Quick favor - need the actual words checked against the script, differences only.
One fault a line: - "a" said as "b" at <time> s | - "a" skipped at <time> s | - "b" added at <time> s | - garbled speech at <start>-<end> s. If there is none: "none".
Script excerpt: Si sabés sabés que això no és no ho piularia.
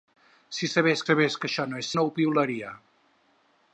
none